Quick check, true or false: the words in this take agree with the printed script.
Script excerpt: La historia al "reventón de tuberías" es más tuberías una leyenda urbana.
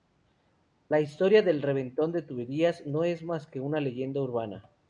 false